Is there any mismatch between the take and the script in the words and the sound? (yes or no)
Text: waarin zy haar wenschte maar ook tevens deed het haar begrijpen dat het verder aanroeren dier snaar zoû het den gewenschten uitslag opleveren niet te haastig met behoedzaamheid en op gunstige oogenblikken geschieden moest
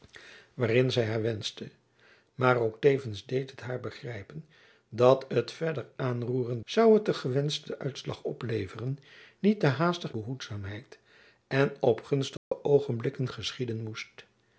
yes